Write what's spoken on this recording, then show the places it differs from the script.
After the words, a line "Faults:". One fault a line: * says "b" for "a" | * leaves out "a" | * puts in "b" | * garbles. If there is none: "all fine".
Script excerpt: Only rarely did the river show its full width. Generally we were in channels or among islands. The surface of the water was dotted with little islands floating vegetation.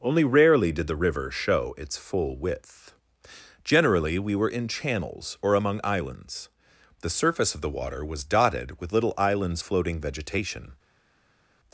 Only rarely did the river show its full width. Generally we were in channels or among islands. The surface of the water was dotted with little islands floating vegetation.
Faults:
all fine